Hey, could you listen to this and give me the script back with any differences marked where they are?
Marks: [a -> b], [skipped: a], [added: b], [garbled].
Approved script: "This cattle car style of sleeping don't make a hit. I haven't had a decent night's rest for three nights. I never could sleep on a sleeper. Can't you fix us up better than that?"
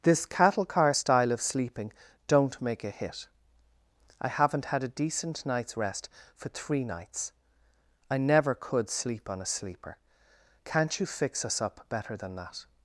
"This cattle car style of sleeping don't make a hit. I haven't had a decent night's rest for three nights. I never could sleep on a sleeper. Can't you fix us up better than that?"